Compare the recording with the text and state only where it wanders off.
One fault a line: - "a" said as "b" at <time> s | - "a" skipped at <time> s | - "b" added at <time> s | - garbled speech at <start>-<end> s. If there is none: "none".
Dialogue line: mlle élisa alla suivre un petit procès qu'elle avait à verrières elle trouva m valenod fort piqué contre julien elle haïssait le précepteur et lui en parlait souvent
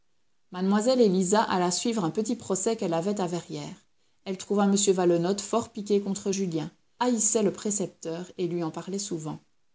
- "elle" skipped at 6.7 s